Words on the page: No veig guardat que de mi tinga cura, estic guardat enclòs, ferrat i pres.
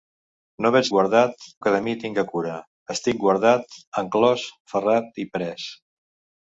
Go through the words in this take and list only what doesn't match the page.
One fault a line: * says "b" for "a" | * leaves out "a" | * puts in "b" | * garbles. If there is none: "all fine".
all fine